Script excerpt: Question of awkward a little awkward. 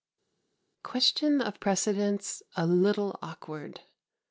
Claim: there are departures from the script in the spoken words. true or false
true